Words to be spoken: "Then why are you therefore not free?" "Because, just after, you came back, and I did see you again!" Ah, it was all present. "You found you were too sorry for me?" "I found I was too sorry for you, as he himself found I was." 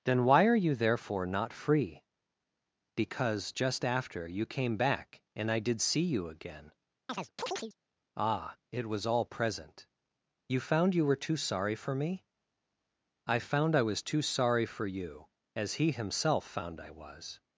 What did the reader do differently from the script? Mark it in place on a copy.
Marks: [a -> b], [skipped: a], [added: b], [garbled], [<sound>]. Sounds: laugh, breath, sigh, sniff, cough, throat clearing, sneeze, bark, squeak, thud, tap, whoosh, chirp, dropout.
"Then why are you therefore not free?" "Because, just after, you came back, and I did see you again!" [chirp] Ah, it was all present. "You found you were too sorry for me?" "I found I was too sorry for you, as he himself found I was."